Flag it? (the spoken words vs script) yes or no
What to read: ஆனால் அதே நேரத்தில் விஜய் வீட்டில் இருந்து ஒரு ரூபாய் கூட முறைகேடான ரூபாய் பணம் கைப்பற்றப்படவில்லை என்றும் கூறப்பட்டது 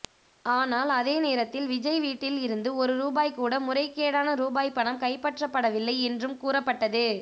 no